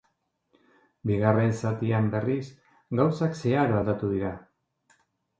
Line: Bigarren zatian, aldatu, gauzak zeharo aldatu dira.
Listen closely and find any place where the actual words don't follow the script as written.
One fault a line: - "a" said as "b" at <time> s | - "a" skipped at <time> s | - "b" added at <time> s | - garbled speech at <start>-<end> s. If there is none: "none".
- "aldatu" said as "berriz" at 2.1 s